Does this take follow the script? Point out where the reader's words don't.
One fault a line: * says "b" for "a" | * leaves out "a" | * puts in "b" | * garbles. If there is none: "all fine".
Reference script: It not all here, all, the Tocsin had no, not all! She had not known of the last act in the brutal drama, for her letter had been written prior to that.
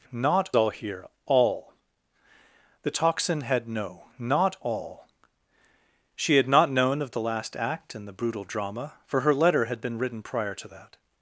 all fine